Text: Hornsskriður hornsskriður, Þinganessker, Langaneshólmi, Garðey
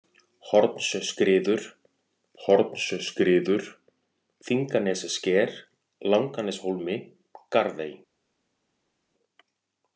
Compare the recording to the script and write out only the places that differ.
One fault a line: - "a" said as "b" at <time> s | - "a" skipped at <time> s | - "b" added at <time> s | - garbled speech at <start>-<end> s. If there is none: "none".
none